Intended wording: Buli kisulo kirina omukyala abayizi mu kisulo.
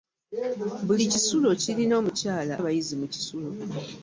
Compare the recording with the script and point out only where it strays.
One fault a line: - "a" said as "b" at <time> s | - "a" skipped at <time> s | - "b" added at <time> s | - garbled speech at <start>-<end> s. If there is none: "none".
none